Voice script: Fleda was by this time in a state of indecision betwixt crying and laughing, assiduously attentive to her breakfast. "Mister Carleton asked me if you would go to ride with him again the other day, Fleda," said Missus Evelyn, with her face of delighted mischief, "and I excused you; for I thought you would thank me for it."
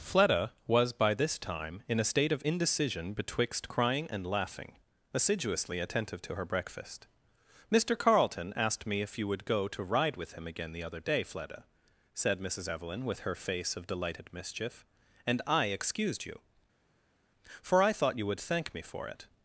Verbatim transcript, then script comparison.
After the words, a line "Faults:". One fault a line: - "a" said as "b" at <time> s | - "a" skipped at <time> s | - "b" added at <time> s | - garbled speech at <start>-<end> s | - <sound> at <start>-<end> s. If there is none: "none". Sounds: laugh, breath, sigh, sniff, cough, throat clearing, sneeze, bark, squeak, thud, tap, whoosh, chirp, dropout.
Fleda was by this time in a state of indecision betwixt crying and laughing, assiduously attentive to her breakfast. "Mister Carleton asked me if you would go to ride with him again the other day, Fleda," said Missus Evelyn, with her face of delighted mischief, "and I excused you; for I thought you would thank me for it."
Faults:
none